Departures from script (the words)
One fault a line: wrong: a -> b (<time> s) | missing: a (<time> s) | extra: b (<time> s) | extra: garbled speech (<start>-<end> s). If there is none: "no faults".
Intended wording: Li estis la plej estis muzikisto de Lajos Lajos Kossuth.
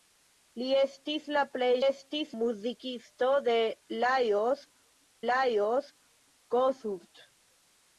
no faults